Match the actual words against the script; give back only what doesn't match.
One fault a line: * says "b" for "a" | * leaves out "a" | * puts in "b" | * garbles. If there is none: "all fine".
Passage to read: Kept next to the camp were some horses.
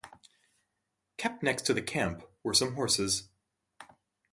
all fine